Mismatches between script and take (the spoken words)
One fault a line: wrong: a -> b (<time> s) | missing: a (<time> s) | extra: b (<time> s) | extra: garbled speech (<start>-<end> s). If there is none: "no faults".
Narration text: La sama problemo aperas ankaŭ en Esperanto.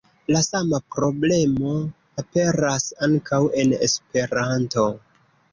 no faults